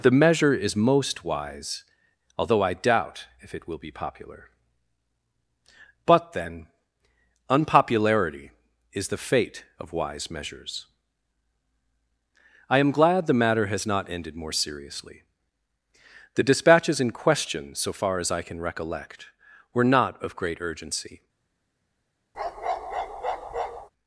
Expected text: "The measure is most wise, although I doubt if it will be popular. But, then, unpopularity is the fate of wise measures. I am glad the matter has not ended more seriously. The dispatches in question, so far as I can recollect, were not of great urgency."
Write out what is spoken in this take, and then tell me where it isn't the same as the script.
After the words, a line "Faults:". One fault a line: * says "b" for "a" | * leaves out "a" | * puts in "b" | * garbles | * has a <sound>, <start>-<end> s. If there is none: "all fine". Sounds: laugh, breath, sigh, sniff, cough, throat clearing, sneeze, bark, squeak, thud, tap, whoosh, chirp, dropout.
"The measure is most wise, although I doubt if it will be popular. But, then, unpopularity is the fate of wise measures. I am glad the matter has not ended more seriously. The dispatches in question, so far as I can recollect, were not of great urgency."
Faults:
* has a bark, 22.3-23.9 s